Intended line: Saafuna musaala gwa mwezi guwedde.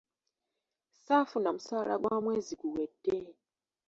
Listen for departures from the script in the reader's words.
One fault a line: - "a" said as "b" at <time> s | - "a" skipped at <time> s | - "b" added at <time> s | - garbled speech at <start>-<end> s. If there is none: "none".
none